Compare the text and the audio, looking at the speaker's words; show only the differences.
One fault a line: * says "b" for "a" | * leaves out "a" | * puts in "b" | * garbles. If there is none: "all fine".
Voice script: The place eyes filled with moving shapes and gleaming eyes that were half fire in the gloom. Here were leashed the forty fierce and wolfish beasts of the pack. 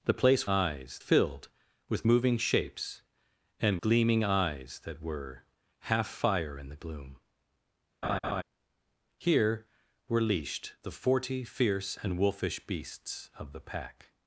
all fine